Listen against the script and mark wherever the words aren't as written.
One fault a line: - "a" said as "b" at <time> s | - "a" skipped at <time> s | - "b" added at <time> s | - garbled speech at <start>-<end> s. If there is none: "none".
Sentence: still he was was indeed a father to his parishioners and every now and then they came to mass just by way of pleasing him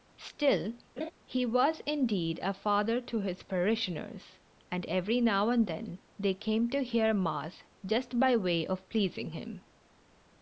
- "was" skipped at 1.8 s
- "hear" added at 6.8 s